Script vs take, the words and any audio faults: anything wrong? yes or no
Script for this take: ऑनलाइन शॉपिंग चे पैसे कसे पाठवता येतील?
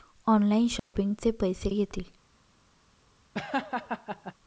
yes